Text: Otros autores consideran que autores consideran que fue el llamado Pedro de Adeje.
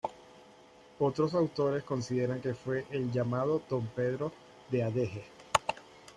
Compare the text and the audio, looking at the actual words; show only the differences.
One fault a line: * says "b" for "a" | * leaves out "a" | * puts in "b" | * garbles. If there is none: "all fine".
* leaves out "autores consideran que"
* puts in "don"